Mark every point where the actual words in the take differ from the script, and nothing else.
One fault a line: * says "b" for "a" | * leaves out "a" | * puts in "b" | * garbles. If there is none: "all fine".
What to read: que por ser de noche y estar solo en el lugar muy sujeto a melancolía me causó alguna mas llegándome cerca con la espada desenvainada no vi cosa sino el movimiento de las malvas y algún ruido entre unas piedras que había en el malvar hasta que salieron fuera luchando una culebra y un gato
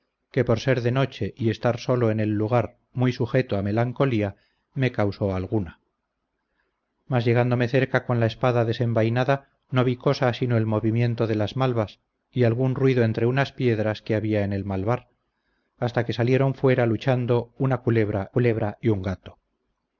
* puts in "culebra"